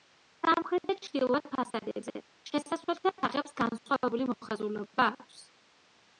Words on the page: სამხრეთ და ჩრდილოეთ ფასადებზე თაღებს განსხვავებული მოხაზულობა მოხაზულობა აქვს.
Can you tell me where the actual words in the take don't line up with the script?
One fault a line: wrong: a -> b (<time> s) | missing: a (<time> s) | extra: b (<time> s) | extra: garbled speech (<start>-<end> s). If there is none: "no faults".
extra: შესასვლელთა (2.5 s)
missing: მოხაზულობა (5.1 s)